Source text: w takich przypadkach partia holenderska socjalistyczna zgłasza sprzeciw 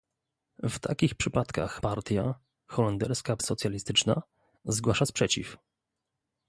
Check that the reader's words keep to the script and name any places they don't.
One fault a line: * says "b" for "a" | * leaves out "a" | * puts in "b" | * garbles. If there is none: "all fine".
all fine